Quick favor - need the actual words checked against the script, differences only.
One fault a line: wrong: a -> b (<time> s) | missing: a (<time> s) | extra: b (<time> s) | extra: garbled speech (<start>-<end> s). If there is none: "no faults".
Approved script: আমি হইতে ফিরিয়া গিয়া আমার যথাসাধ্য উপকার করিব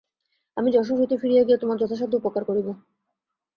extra: যশোর (0.7 s)
wrong: আমার -> তোমার (1.6 s)